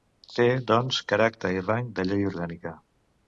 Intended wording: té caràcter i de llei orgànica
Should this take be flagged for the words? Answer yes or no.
yes